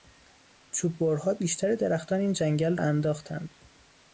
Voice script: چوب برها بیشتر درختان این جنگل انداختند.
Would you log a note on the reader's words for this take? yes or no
no